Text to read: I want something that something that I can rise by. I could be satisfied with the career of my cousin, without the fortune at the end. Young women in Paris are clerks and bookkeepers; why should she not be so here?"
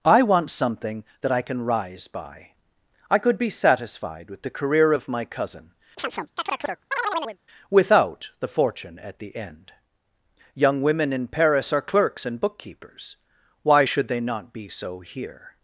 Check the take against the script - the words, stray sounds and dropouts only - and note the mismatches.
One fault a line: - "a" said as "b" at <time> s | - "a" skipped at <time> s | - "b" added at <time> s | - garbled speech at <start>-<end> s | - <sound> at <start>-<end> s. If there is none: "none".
- "something that" skipped at 1.3 s
- chirp at 6.0-7.4 s
- "she" said as "they" at 14.1 s